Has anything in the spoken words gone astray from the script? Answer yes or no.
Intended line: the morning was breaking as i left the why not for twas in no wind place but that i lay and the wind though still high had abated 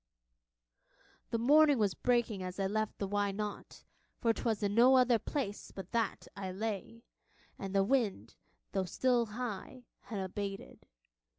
yes